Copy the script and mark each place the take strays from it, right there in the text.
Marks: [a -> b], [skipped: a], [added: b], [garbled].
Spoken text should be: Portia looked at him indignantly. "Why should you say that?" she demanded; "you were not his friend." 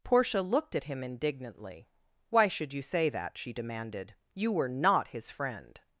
Portia looked at him indignantly. "Why should you say that?" she demanded; "you were not his friend."